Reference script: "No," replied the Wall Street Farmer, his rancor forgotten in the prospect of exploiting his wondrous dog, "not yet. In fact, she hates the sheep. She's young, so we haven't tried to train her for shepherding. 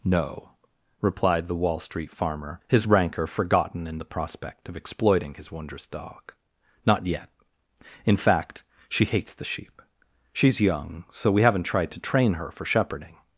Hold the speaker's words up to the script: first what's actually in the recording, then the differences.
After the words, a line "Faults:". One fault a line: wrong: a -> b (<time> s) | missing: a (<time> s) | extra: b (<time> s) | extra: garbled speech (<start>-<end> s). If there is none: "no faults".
"No," replied the Wall Street Farmer, his rancor forgotten in the prospect of exploiting his wondrous dog, "not yet. In fact, she hates the sheep. She's young, so we haven't tried to train her for shepherding.
Faults:
no faults